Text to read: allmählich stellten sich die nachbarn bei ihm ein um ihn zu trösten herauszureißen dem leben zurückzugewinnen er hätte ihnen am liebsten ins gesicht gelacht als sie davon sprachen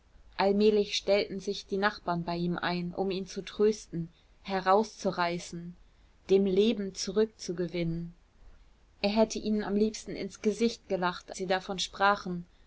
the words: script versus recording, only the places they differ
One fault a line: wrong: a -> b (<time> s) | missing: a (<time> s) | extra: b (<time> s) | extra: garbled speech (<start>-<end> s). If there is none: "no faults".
missing: als (11.3 s)